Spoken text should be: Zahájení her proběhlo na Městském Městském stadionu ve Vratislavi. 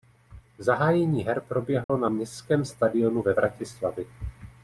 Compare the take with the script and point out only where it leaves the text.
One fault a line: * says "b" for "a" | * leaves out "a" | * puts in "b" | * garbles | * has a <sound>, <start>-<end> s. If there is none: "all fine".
* has a dropout, 1.8-1.9 s
* leaves out "Městském"